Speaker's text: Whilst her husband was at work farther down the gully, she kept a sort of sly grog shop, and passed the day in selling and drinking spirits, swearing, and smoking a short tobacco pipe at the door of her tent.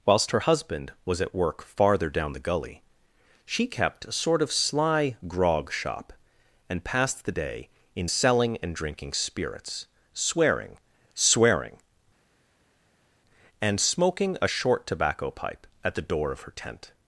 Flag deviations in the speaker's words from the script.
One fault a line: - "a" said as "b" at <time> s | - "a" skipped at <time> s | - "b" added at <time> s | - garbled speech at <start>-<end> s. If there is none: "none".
- "swearing" added at 11.2 s